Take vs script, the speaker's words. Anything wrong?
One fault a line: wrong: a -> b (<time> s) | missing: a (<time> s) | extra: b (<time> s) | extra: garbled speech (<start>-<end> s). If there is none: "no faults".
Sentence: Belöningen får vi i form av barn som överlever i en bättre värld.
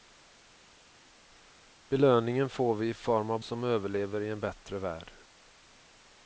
missing: barn (3.4 s)